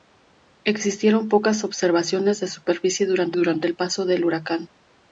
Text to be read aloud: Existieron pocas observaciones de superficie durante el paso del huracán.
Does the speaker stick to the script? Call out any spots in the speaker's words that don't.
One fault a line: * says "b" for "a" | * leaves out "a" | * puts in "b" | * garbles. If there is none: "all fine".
* puts in "durante"